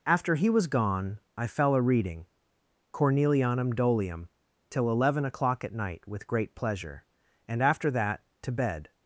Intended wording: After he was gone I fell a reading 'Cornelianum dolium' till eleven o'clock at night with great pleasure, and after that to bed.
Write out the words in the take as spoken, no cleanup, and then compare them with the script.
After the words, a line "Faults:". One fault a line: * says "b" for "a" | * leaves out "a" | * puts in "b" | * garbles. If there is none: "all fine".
After he was gone I fell a reading 'Cornelianum dolium' till eleven o'clock at night with great pleasure, and after that to bed.
Faults:
all fine